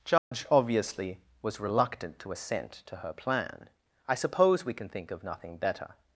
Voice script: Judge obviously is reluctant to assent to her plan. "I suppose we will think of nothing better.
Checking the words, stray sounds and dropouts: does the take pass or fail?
fail